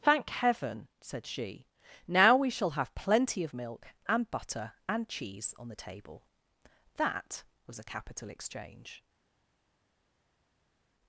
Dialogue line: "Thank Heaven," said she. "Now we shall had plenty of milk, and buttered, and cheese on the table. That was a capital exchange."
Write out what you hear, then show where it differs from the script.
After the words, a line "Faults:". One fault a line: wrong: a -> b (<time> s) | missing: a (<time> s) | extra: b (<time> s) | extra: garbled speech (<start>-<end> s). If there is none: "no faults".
"Thank Heaven," said she. "Now we shall have plenty of milk, and butter, and cheese on the table. That was a capital exchange."
Faults:
wrong: had -> have (2.7 s)
wrong: buttered -> butter (4.3 s)